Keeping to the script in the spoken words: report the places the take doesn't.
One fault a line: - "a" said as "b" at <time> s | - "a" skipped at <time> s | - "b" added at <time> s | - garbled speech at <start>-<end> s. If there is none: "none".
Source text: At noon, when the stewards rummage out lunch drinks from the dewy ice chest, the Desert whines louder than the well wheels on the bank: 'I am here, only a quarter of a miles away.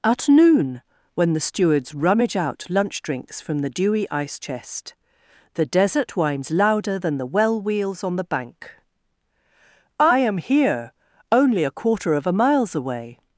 none